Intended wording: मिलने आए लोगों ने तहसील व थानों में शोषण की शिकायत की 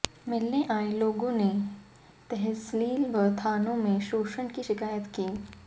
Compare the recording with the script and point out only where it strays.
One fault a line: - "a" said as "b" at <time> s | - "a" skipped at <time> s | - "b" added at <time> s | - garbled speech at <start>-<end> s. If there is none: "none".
none